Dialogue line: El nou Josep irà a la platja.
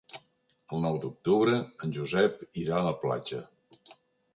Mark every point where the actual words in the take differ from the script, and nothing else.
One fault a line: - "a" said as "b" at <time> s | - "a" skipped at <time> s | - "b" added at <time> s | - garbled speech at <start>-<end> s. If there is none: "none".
- "d'octubre en" added at 1.0 s